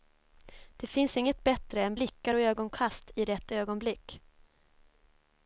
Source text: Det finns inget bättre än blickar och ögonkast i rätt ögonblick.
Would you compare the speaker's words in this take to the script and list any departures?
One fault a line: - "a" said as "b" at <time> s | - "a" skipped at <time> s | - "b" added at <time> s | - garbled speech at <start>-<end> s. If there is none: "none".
none